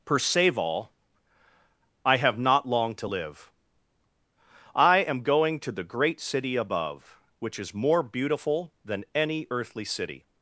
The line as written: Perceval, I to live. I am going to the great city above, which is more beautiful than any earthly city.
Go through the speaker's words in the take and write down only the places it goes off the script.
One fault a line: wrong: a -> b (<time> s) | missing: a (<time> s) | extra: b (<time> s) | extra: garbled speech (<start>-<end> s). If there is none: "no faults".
extra: have not long (2.2 s)